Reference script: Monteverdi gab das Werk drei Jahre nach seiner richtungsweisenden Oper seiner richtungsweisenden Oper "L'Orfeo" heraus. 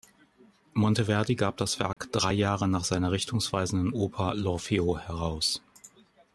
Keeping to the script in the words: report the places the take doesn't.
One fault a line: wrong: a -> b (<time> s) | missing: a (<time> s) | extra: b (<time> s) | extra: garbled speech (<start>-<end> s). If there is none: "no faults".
missing: seiner richtungsweisenden Oper (4.4 s)